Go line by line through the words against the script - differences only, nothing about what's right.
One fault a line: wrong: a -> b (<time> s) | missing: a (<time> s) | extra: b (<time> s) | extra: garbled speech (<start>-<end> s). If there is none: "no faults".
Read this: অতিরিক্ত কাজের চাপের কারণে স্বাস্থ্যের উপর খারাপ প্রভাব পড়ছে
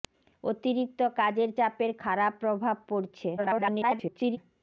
missing: কারণে স্বাস্থ্যের উপর (1.9 s)
extra: garbled speech (3.4-4.4 s)